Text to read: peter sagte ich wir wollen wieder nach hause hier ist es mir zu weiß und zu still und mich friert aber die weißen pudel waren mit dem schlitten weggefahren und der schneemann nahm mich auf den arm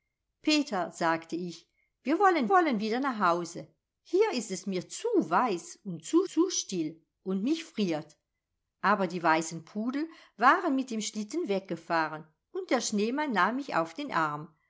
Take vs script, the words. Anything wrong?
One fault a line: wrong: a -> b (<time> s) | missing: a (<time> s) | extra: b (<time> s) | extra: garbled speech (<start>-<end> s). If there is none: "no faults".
extra: wollen (2.5 s)
extra: zu (6.3 s)